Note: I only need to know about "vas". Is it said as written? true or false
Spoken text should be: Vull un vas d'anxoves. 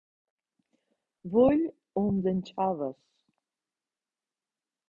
false